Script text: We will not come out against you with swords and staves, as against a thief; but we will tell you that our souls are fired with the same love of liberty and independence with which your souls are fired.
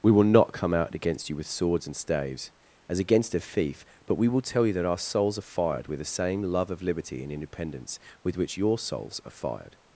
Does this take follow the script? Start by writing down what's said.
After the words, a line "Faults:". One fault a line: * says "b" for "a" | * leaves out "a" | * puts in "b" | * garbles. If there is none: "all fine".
We will not come out against you with swords and staves, as against a thief; but we will tell you that our souls are fired with the same love of liberty and independence with which your souls are fired.
Faults:
all fine